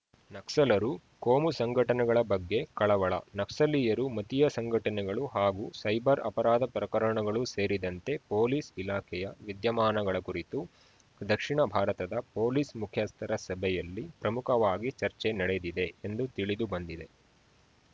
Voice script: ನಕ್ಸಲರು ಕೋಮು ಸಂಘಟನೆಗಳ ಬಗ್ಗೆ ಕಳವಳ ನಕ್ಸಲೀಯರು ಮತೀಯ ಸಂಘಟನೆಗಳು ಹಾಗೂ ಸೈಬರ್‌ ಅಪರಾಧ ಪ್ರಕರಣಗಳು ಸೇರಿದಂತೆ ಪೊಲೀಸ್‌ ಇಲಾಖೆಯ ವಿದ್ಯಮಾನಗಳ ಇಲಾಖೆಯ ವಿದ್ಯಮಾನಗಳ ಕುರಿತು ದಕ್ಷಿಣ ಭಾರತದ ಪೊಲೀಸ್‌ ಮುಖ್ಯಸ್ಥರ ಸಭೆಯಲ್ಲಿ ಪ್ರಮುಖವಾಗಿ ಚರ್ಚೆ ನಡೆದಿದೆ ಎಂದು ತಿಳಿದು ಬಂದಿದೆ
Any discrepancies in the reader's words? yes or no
yes